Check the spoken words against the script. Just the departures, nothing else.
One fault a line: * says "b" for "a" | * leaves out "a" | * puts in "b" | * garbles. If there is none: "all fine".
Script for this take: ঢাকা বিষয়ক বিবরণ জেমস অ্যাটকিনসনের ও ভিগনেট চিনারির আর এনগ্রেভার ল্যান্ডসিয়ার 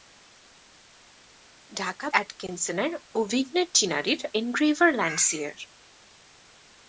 * leaves out "বিষয়ক বিবরণ জেমস"
* leaves out "আর"